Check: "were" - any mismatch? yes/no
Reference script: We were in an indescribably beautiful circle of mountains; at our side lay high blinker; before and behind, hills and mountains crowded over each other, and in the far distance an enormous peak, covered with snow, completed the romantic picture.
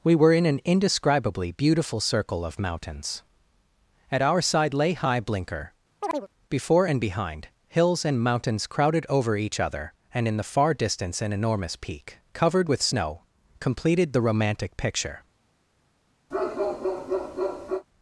no